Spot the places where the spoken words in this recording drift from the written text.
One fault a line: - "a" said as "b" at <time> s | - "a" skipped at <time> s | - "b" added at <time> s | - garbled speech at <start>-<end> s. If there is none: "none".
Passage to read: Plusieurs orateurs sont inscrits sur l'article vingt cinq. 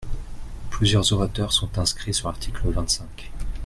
none